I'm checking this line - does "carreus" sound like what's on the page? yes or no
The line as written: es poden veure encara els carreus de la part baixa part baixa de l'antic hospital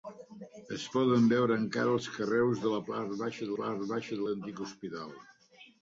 yes